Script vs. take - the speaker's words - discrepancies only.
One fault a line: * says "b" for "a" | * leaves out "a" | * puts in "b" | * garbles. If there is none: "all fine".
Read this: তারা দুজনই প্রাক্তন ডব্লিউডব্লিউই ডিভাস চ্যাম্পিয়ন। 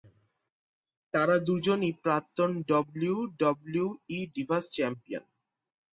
all fine